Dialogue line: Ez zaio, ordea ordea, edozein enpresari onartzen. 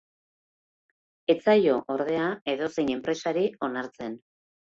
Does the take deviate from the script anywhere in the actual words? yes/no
yes